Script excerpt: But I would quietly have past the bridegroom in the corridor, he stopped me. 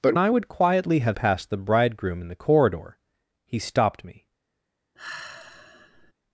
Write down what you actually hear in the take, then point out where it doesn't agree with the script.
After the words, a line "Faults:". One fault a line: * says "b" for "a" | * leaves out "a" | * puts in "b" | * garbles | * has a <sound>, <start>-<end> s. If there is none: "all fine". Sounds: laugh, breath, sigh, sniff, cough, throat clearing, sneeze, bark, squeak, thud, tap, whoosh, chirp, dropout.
But I would quietly have past the bridegroom in the corridor, he stopped me.
Faults:
* has a sigh, 5.0-6.1 s